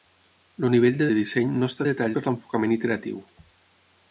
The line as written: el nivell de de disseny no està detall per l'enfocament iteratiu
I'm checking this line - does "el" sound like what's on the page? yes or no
yes